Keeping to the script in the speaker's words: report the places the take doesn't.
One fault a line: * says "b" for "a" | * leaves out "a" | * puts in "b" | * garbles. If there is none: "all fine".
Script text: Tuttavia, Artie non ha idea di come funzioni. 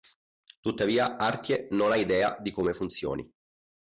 all fine